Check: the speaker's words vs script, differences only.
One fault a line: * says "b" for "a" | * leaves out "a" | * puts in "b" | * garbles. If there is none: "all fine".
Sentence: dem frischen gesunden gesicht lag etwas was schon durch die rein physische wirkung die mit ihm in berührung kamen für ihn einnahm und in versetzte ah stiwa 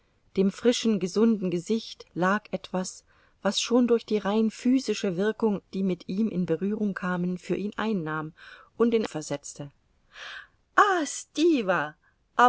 all fine